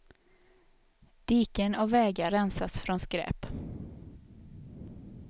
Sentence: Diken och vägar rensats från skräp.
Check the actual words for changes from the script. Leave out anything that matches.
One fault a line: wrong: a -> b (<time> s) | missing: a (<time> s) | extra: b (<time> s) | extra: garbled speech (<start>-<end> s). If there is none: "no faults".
no faults